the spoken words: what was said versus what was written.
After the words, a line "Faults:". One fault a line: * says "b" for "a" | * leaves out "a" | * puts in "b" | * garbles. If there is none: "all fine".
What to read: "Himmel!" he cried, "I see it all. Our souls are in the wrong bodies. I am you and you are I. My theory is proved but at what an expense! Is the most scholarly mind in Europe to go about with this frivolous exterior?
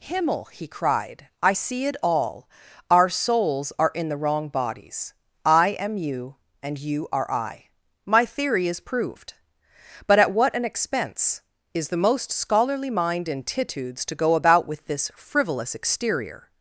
"Himmel!" he cried, "I see it all. Our souls are in the wrong bodies. I am you and you are I. My theory is proved but at what an expense! Is the most scholarly mind in Titudes to go about with this frivolous exterior?
Faults:
* says "Titudes" for "Europe"